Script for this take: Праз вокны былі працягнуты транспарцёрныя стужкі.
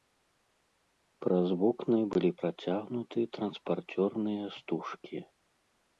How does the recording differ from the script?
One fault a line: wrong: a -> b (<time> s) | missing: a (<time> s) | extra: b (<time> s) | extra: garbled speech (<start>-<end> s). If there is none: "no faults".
no faults